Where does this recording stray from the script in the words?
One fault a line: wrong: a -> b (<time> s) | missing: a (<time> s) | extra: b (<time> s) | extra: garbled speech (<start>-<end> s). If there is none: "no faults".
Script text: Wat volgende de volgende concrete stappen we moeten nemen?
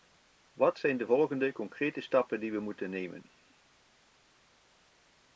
wrong: volgende -> zijn (0.8 s)
extra: die (2.4 s)